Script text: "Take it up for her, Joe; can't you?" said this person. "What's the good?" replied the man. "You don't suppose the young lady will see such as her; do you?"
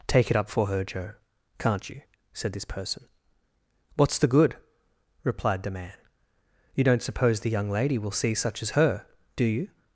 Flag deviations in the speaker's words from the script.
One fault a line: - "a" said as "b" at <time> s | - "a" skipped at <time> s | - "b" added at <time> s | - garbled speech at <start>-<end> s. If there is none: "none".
none